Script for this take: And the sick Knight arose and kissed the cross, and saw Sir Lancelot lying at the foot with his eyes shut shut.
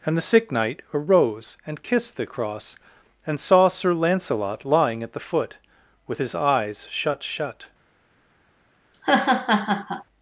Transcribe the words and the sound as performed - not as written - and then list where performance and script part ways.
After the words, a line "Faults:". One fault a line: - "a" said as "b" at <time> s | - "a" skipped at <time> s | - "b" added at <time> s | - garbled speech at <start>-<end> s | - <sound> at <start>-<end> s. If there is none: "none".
And the sick Knight arose and kissed the cross, and saw Sir Lancelot lying at the foot with his eyes shut shut.
Faults:
- laugh at 8.9-10.0 s